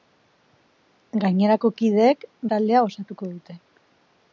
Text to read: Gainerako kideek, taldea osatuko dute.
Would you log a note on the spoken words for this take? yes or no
no